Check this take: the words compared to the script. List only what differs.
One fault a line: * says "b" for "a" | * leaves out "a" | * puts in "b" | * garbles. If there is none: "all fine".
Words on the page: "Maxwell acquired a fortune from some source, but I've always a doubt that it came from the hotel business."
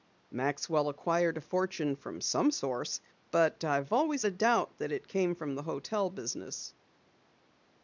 all fine